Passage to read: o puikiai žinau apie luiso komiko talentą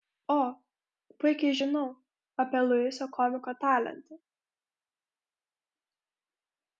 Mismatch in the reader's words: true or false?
false